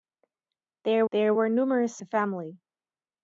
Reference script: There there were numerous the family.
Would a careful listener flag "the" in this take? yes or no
no